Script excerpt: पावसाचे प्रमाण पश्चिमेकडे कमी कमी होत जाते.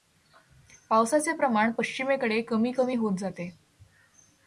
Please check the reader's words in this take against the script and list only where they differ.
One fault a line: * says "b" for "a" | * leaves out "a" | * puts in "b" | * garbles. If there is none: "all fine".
all fine